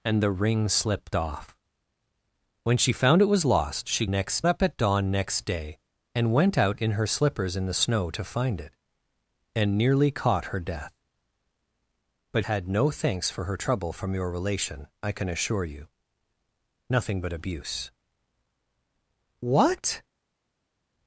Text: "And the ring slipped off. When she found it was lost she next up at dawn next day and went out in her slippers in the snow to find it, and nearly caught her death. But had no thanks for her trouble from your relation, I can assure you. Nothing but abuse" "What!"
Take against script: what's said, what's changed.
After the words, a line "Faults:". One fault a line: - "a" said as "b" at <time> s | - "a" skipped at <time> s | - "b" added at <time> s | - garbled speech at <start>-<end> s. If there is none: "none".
"And the ring slipped off. When she found it was lost she next up at dawn next day and went out in her slippers in the snow to find it, and nearly caught her death. But had no thanks for her trouble from your relation, I can assure you. Nothing but abuse" "What!"
Faults:
none